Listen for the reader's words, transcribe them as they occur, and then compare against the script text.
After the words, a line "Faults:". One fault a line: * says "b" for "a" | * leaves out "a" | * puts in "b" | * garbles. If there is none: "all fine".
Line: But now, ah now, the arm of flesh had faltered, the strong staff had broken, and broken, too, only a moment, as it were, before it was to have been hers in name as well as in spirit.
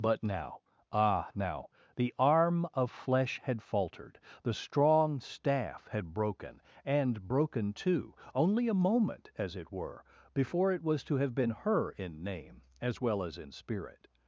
But now, ah now, the arm of flesh had faltered, the strong staff had broken, and broken, too, only a moment, as it were, before it was to have been her in name as well as in spirit.
Faults:
* says "her" for "hers"